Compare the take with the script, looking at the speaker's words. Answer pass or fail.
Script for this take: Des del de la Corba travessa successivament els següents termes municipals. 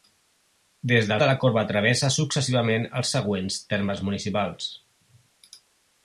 pass